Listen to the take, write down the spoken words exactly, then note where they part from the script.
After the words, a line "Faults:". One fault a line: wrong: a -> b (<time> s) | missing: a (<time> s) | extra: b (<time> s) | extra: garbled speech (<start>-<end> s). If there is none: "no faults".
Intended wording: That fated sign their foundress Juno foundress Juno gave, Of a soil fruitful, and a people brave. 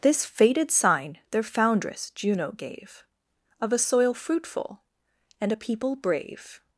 This fated sign their foundress Juno gave, Of a soil fruitful, and a people brave.
Faults:
wrong: That -> This (0.0 s)
missing: foundress Juno (2.5 s)